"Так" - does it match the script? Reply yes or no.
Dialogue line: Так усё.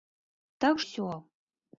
yes